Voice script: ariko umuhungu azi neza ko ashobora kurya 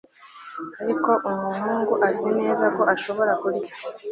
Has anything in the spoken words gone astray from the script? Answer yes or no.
no